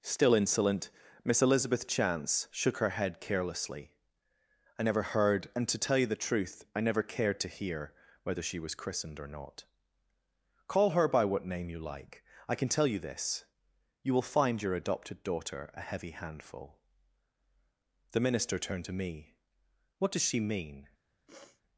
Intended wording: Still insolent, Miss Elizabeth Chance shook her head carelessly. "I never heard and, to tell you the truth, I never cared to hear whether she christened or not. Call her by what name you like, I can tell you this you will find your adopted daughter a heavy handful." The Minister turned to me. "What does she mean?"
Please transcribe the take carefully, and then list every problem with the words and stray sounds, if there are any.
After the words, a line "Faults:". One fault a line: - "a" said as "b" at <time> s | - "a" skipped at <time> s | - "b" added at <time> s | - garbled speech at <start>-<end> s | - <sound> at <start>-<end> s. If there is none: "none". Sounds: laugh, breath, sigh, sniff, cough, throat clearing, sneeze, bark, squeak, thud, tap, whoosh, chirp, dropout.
Still insolent, Miss Elizabeth Chance shook her head carelessly. "I never heard and, to tell you the truth, I never cared to hear whether she was christened or not. Call her by what name you like, I can tell you this you will find your adopted daughter a heavy handful." The Minister turned to me. "What does she mean?"
Faults:
- "was" added at 8.6 s
- sniff at 21.3-21.6 s